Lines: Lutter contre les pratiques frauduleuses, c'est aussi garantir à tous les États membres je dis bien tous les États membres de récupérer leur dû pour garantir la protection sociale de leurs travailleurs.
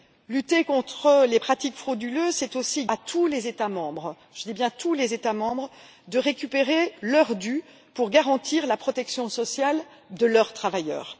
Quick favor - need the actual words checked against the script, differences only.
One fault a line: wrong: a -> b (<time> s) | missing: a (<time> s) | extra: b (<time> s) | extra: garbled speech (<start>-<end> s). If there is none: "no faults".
missing: garantir (2.8 s)